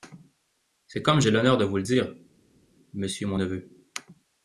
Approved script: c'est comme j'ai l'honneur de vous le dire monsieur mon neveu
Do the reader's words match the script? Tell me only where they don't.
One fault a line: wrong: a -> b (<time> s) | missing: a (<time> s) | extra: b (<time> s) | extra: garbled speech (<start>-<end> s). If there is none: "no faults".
no faults